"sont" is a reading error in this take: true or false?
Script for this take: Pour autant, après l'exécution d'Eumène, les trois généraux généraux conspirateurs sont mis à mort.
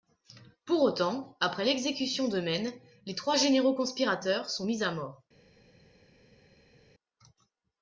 false